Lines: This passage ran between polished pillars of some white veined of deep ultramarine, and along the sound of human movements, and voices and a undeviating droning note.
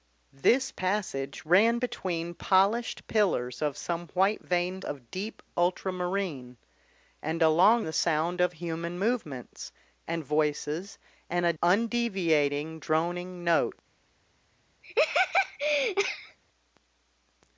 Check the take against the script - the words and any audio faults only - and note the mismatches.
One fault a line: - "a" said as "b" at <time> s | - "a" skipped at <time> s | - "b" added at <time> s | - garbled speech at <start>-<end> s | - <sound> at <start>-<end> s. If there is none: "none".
- laugh at 14.8-16.4 s